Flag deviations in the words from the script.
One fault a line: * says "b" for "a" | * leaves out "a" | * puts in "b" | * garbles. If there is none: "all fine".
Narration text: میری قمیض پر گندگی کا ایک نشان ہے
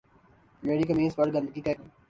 * leaves out "نشان"